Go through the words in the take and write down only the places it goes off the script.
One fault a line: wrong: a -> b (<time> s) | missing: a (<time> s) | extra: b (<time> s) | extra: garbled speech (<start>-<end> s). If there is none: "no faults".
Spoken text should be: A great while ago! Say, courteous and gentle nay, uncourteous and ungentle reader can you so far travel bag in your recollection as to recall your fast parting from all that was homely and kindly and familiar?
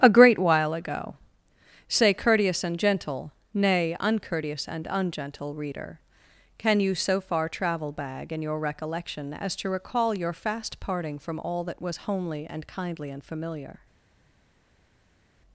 no faults